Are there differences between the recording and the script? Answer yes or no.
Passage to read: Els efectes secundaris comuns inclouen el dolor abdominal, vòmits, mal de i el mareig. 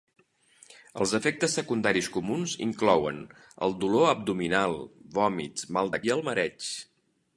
no